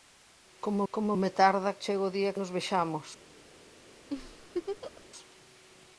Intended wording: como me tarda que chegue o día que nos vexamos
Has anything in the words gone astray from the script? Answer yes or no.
yes